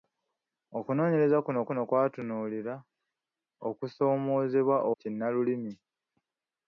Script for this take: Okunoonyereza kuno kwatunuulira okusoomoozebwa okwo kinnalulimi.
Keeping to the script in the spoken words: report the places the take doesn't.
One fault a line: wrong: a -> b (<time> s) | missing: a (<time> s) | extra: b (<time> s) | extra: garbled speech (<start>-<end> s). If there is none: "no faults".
extra: kuno (1.7 s)
missing: okwo (4.8 s)